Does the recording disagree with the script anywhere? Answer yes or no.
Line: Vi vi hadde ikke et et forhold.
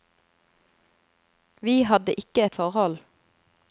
yes